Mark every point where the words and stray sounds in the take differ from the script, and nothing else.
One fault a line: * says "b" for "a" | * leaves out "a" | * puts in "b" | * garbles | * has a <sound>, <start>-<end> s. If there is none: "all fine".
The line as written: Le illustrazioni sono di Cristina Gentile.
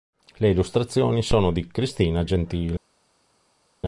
all fine